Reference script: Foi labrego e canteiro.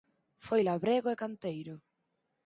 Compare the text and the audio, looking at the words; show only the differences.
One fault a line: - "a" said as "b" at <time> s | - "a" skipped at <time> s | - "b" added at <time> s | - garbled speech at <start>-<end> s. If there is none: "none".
none